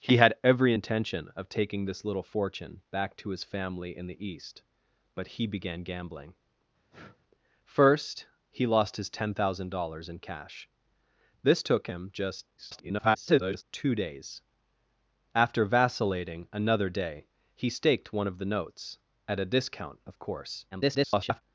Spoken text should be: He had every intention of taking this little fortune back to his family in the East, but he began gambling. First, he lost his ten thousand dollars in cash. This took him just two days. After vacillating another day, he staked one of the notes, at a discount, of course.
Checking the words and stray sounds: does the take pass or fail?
fail